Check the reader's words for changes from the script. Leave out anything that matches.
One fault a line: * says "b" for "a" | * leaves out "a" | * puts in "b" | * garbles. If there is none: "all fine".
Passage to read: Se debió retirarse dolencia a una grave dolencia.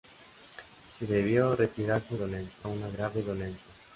all fine